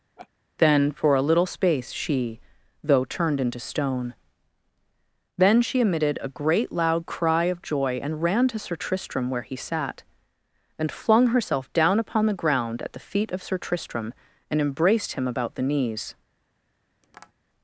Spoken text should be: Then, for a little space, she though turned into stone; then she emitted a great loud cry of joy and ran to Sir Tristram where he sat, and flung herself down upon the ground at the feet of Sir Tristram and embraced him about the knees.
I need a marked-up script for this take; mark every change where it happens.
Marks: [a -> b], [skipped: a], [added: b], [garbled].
Then, for a little space, she though turned into stone; then she emitted a great loud cry of joy and ran to Sir Tristram where he sat, and flung herself down upon the ground at the feet of Sir Tristram and embraced him about the knees.